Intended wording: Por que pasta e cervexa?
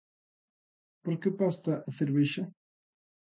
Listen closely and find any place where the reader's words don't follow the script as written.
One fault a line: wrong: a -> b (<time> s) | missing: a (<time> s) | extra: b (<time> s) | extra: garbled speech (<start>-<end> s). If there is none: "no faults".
no faults